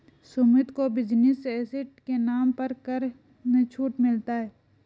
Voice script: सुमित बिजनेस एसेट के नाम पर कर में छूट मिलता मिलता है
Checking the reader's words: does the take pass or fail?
fail